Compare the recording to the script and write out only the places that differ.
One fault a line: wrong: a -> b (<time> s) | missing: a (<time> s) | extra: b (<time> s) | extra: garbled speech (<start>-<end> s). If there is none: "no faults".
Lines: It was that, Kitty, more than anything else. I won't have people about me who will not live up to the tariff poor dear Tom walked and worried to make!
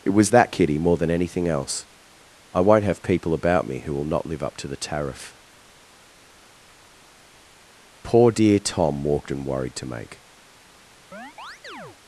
no faults